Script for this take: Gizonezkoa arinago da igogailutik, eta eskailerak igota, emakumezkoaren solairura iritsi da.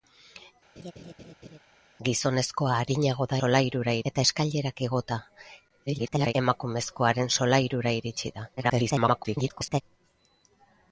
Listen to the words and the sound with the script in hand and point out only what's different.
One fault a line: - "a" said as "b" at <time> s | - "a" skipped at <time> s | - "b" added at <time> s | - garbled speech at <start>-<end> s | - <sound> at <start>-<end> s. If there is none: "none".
- laugh at 0.8-1.6 s
- "igogailutik" said as "solairura" at 3.4 s
- garbled speech at 5.9-6.3 s
- garbled speech at 8.6-9.8 s